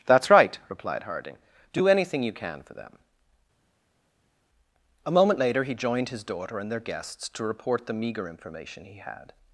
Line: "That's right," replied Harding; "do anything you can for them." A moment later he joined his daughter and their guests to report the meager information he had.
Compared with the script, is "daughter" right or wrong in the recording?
right